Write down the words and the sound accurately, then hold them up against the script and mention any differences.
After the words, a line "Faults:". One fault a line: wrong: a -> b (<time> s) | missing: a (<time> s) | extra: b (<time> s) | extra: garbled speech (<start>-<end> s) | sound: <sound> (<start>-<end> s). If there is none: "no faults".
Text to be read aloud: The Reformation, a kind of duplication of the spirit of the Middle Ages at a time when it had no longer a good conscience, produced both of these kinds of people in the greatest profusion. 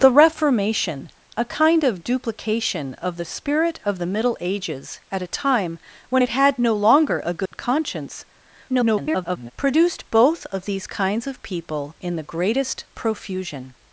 The Reformation, a kind of duplication of the spirit of the Middle Ages at a time when it had no longer a good conscience, [garbled] produced both of these kinds of people in the greatest profusion.
Faults:
sound: dropout (7.5-7.5 s)
extra: garbled speech (8.7-9.5 s)